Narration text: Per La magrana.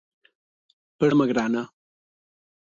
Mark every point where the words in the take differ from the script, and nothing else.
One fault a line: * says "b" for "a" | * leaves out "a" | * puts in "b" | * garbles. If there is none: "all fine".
all fine